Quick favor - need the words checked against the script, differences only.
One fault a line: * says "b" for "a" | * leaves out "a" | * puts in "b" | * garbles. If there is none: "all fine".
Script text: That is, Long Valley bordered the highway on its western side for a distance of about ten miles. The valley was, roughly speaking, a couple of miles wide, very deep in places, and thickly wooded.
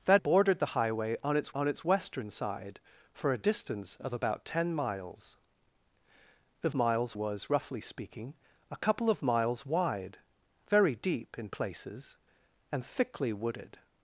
* leaves out "is Long Valley"
* puts in "on its"
* says "miles" for "valley"